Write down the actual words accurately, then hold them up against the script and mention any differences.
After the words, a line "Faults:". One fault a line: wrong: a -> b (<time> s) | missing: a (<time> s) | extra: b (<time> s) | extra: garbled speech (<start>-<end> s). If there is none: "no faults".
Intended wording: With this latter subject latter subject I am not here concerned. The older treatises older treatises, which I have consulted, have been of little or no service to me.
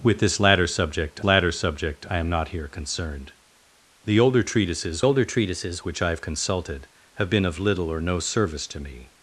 With this latter subject latter subject I am not here concerned. The older treatises older treatises, which I have consulted, have been of little or no service to me.
Faults:
no faults